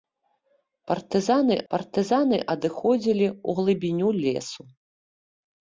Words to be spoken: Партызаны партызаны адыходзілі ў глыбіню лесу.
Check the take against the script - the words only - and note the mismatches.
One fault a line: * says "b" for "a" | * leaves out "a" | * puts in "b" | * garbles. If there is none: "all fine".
all fine